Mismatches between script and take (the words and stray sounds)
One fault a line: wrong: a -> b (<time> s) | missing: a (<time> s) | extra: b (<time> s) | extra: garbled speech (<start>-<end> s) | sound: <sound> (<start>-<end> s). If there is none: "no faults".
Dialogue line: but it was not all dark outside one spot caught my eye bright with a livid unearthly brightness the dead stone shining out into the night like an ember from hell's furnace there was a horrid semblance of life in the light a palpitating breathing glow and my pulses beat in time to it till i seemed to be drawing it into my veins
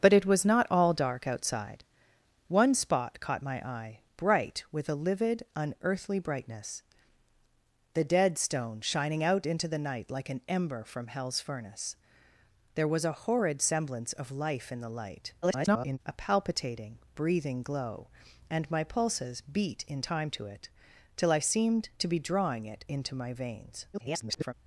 extra: garbled speech (15.4-16.0 s)
extra: garbled speech (23.9-24.5 s)